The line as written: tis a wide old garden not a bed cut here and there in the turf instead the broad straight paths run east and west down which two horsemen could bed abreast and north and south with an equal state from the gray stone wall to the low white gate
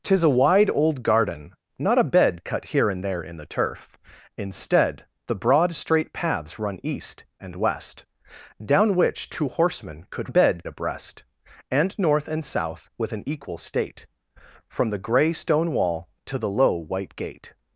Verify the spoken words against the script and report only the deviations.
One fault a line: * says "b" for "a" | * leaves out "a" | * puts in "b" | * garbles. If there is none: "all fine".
all fine